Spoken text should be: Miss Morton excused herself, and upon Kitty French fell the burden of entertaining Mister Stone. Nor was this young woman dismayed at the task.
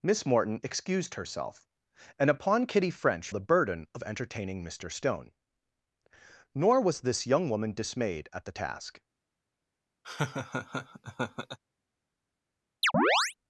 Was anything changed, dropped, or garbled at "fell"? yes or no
yes